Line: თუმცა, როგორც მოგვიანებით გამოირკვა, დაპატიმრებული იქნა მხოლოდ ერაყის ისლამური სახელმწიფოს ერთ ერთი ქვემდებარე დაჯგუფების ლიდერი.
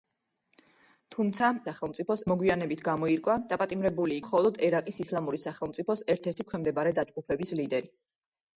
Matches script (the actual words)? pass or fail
fail